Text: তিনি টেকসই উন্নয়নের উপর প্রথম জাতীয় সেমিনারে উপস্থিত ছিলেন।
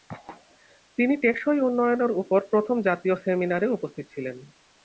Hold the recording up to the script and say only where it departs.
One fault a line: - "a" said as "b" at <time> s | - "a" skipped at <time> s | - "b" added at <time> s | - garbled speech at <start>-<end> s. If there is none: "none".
none